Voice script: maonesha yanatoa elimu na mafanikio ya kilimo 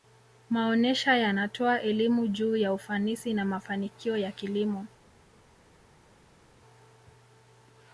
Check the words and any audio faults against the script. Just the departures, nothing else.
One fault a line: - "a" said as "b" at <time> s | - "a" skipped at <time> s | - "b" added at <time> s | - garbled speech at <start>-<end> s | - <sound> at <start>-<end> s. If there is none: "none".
- "juu ya ufanisi" added at 2.3 s